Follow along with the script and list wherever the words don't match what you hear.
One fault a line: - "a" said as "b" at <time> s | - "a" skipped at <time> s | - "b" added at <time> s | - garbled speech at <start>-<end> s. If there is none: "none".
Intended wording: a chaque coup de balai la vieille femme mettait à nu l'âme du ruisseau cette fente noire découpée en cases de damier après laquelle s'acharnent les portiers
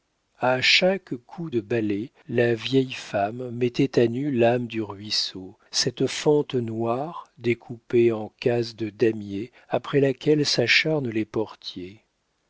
none